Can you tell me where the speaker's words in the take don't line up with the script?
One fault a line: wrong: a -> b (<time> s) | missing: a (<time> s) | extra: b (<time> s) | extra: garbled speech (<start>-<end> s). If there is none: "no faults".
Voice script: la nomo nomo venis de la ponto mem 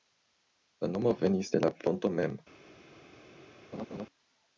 missing: nomo (1.1 s)